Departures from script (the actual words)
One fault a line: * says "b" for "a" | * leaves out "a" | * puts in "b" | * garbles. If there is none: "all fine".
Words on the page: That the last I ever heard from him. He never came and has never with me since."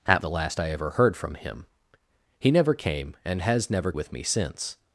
all fine